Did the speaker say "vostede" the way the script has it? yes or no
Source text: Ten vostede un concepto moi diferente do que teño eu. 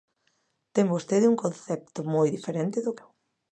yes